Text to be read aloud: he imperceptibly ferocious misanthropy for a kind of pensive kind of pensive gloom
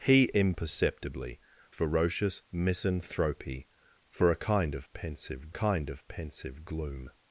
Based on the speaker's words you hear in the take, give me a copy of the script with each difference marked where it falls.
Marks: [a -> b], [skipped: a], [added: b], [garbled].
he imperceptibly ferocious misanthropy for a kind of pensive kind of pensive gloom